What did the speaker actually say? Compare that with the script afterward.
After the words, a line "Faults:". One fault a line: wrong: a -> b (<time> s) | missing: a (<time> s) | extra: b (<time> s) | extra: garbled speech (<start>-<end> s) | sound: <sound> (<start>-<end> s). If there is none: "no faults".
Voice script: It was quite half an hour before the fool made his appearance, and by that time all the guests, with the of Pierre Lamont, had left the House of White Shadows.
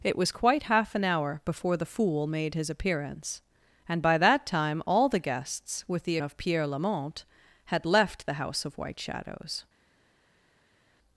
It was quite half an hour before the fool made his appearance, and by that time all the guests, with the of Pierre Lamont, had left the House of White Shadows.
Faults:
no faults